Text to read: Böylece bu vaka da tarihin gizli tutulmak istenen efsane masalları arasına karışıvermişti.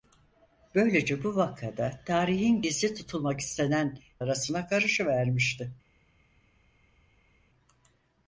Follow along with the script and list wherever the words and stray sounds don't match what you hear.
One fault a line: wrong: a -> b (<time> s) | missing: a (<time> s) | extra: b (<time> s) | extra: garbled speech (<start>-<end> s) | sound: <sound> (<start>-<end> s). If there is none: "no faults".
missing: efsane masalları (4.0 s)